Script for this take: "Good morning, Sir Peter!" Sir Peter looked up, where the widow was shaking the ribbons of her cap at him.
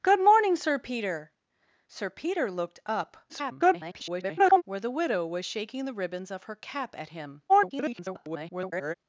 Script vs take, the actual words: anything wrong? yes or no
yes